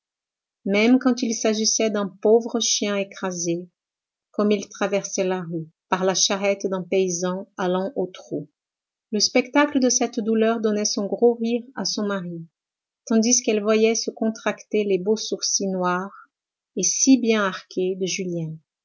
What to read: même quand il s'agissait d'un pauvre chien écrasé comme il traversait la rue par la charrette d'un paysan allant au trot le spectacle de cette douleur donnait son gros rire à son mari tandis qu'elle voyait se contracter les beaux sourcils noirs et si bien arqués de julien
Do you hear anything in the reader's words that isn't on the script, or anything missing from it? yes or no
no